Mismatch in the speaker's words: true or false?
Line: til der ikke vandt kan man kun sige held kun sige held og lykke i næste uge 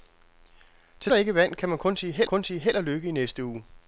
false